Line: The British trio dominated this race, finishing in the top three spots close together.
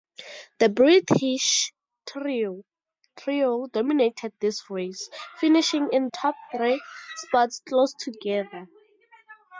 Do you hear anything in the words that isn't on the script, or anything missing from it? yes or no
yes